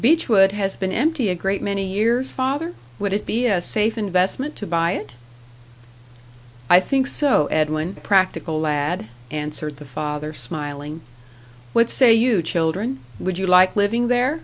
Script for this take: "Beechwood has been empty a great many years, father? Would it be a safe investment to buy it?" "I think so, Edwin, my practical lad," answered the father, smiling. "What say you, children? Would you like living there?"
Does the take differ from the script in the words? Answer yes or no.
yes